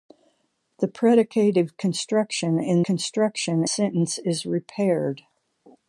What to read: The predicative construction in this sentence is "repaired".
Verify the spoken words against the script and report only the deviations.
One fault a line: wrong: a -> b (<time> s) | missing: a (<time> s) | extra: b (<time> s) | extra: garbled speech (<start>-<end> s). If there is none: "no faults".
wrong: this -> construction (2.8 s)